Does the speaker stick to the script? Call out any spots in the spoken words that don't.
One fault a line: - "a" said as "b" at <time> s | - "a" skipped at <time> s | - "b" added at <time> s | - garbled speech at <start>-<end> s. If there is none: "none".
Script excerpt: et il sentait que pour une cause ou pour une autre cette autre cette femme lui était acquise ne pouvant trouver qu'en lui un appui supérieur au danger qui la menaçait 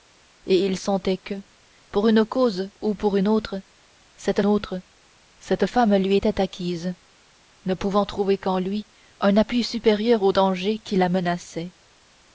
none